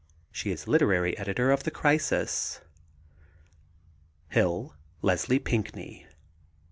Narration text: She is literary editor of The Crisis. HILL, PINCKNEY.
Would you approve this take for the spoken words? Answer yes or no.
no